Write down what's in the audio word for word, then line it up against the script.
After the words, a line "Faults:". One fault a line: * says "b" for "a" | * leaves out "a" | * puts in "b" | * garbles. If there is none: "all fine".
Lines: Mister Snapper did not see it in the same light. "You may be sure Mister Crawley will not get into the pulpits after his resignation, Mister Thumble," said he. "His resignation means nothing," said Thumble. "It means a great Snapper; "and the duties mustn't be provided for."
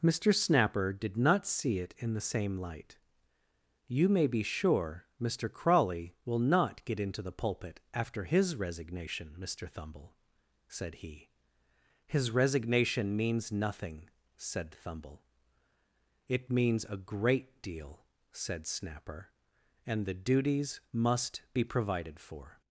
Mister Snapper did not see it in the same light. "You may be sure Mister Crawley will not get into the pulpit after his resignation, Mister Thumble," said he. "His resignation means nothing," said Thumble. "It means a great deal," said Snapper; "and the duties must be provided for."
Faults:
* says "pulpit" for "pulpits"
* puts in "deal said"
* says "must" for "mustn't"